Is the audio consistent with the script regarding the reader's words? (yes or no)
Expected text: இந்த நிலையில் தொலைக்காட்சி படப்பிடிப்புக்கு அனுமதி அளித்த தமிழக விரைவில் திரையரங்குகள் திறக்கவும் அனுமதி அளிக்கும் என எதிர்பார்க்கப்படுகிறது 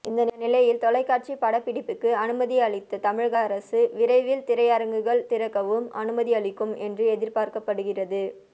no